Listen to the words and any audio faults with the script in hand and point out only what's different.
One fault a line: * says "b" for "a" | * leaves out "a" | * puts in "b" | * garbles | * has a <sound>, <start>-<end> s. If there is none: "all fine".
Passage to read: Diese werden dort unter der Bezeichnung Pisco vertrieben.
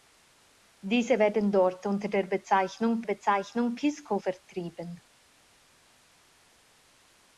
* puts in "Bezeichnung"